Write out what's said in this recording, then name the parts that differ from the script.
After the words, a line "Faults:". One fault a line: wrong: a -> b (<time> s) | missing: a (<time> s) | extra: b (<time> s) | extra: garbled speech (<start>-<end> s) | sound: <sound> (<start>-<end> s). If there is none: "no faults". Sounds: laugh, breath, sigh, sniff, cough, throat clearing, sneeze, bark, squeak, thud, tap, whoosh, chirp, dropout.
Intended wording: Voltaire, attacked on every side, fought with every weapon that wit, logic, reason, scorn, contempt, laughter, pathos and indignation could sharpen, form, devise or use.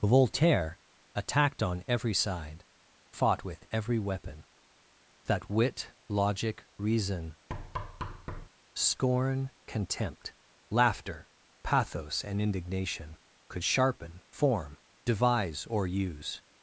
Voltaire, attacked on every side, fought with every weapon that wit, logic, reason, scorn, contempt, laughter, pathos and indignation could sharpen, form, devise or use.
Faults:
sound: thud (7.5-8.5 s)